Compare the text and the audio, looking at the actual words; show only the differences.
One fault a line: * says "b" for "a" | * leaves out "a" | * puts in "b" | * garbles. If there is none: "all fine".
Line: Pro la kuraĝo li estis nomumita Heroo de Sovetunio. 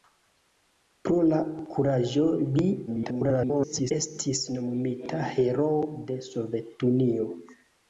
* garbles